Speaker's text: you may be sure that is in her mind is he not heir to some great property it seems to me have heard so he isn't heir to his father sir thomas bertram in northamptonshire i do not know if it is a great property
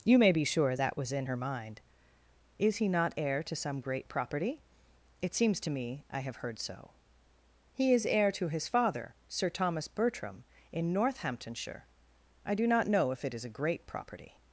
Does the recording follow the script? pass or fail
fail